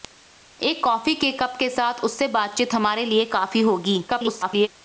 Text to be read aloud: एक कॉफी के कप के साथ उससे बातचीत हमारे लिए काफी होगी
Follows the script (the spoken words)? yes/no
no